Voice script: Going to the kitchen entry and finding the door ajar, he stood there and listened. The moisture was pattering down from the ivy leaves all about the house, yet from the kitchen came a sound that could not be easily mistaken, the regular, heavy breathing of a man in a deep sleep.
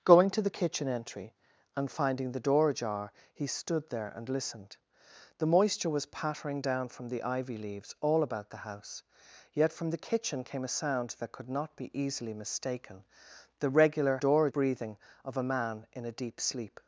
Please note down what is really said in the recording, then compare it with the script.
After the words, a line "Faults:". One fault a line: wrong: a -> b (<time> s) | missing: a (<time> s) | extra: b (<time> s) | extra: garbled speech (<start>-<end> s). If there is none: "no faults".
Going to the kitchen entry and finding the door ajar, he stood there and listened. The moisture was pattering down from the ivy leaves all about the house, yet from the kitchen came a sound that could not be easily mistaken, the regular, door breathing of a man in a deep sleep.
Faults:
wrong: heavy -> door (14.2 s)